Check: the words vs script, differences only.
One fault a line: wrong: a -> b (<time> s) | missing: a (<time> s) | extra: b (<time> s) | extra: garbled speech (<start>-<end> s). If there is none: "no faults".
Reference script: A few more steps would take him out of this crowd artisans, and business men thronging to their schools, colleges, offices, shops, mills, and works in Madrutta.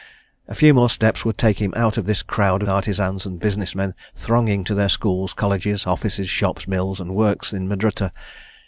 no faults